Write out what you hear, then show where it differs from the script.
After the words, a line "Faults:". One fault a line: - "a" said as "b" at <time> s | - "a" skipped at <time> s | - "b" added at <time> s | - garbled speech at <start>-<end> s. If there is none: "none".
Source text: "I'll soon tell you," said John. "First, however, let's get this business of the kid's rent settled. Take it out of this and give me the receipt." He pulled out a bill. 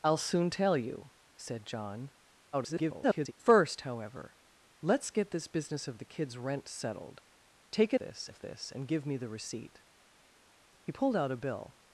"I'll soon tell you," said John. [garbled] "First, however, let's get this business of the kid's rent settled. Take it this of this and give me the receipt." He pulled out a bill.
Faults:
- garbled speech at 2.5-3.3 s
- "out" said as "this" at 8.0 s